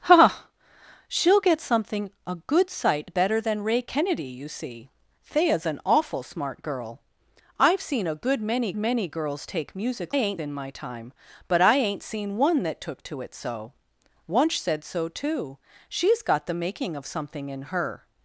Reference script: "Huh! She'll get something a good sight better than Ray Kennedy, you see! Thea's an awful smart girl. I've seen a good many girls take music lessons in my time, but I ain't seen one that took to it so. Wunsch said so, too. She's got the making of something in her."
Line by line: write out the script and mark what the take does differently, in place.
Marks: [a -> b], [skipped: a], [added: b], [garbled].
"Huh! She'll get something a good sight better than Ray Kennedy, you see! Thea's an awful smart girl. I've seen a good many [added: many] girls take music [lessons -> ain't] in my time, but I ain't seen one that took to it so. Wunsch said so, too. She's got the making of something in her."